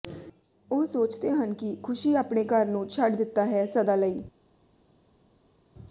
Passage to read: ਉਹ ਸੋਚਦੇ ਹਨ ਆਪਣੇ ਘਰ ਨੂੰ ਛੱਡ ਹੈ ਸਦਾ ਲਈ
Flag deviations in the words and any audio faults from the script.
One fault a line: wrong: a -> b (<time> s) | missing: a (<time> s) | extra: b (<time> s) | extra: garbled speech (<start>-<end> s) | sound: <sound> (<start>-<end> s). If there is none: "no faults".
extra: ਕਿ ਖ਼ੁਸ਼ੀ (1.5 s)
extra: ਦਿੱਤਾ (3.1 s)